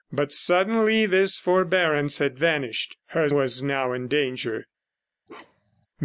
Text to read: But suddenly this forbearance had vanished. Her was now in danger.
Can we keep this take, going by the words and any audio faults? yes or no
no